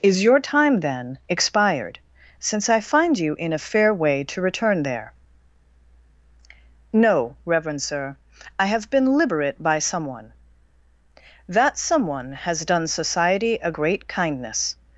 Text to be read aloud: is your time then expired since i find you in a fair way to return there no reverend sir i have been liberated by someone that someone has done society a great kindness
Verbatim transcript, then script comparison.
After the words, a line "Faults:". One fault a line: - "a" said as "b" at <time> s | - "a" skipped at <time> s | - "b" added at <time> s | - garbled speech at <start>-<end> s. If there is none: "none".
is your time then expired since i find you in a fair way to return there no reverend sir i have been liberate by someone that someone has done society a great kindness
Faults:
- "liberated" said as "liberate" at 9.2 s